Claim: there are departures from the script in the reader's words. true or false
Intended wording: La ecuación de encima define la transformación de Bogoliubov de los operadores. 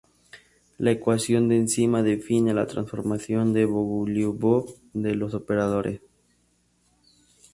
false